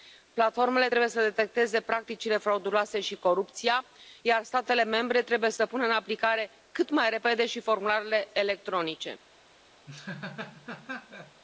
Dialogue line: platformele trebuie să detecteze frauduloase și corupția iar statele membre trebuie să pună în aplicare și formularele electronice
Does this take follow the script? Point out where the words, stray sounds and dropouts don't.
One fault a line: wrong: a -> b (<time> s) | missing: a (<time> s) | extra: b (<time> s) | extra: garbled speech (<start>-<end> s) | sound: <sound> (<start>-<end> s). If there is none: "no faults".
extra: practicile (1.8 s)
extra: cât mai repede (6.7 s)
sound: laugh (9.9-11.4 s)